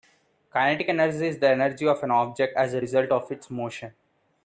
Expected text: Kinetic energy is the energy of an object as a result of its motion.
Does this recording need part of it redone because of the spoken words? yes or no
no